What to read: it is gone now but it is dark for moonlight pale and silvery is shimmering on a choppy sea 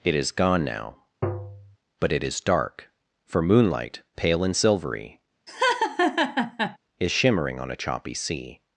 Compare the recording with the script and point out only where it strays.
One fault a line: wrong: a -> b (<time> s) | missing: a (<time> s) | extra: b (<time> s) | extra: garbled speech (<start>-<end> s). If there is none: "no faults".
no faults